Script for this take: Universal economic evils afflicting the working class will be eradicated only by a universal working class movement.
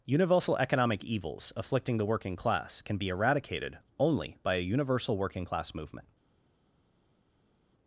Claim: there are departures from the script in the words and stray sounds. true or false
true